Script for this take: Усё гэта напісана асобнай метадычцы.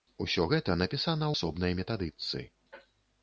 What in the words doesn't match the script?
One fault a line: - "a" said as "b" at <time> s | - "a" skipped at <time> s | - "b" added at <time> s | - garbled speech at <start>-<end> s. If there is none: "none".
none